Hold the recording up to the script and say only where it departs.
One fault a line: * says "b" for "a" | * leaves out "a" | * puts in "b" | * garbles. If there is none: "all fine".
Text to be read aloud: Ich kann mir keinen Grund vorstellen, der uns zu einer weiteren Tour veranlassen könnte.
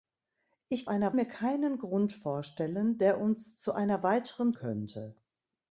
* says "einer" for "kann"
* leaves out "Tour veranlassen"